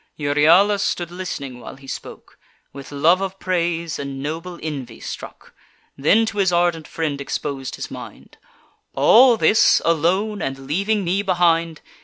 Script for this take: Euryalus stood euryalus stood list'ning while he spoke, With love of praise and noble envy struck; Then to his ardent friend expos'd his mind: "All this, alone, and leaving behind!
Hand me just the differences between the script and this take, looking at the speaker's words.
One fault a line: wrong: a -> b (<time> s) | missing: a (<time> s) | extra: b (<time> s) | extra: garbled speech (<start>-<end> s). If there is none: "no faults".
missing: euryalus stood (1.1 s)
extra: me (11.0 s)